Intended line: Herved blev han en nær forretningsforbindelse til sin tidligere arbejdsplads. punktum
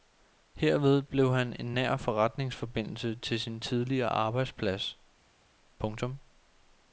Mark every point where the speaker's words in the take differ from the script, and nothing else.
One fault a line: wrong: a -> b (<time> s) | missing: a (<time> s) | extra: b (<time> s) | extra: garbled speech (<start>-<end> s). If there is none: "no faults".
no faults